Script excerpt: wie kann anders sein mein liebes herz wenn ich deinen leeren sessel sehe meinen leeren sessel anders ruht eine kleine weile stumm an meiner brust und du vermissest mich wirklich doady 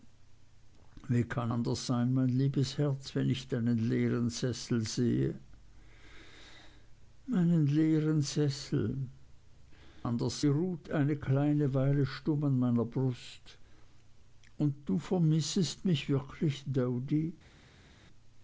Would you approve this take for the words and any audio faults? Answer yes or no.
yes